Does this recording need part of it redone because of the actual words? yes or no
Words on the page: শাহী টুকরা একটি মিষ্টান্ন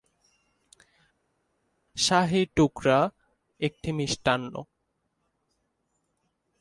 no